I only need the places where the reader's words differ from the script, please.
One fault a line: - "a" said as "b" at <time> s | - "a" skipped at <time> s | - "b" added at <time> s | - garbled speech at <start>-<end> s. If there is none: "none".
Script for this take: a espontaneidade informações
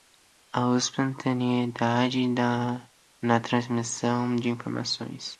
- "na transmissão de" added at 3.2 s